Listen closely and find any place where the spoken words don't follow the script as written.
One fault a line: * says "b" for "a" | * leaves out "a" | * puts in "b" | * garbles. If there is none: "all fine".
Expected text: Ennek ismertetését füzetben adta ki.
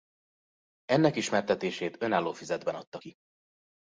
* puts in "önálló"